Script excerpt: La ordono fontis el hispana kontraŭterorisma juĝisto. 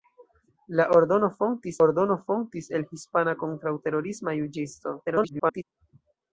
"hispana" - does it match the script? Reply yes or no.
yes